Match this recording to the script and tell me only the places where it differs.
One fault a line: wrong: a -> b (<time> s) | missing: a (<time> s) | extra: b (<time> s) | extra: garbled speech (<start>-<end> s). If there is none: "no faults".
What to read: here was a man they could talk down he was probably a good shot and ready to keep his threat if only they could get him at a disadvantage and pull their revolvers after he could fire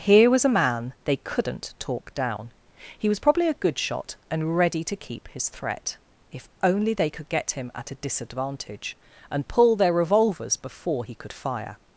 wrong: could -> couldn't (1.2 s)
wrong: after -> before (10.6 s)